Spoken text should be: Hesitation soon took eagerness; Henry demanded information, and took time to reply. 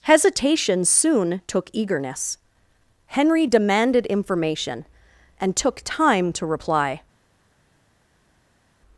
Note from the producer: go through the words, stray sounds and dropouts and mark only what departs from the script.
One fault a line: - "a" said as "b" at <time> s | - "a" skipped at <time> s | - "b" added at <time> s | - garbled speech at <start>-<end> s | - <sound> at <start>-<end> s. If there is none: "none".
none